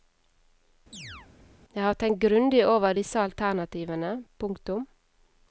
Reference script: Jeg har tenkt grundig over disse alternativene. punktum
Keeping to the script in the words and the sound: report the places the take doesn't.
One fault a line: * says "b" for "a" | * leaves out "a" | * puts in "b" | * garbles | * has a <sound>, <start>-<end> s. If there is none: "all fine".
* has a chirp, 0.9-1.3 s